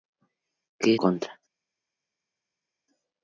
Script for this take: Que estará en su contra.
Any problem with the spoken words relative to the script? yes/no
yes